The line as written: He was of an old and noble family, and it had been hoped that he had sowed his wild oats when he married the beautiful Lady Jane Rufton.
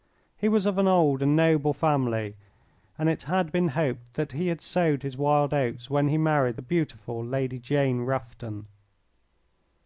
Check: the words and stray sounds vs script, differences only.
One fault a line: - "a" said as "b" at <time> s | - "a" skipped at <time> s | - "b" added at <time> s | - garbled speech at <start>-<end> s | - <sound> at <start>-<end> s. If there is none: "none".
none